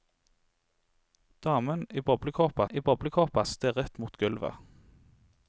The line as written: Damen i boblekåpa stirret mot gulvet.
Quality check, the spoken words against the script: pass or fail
fail